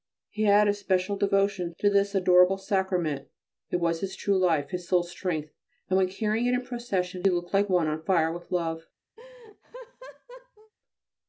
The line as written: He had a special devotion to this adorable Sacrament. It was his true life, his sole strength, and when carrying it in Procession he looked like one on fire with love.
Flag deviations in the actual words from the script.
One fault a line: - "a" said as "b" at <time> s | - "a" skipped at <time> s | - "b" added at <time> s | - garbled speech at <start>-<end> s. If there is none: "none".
none